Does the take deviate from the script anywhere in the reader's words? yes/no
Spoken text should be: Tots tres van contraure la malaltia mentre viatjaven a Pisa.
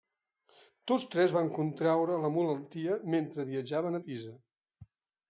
no